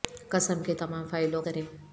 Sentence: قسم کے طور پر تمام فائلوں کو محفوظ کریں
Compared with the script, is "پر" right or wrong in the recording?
wrong